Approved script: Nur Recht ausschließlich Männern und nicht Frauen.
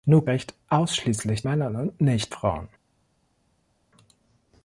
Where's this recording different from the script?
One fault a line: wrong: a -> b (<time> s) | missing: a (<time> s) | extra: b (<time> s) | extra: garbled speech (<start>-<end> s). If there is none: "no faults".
no faults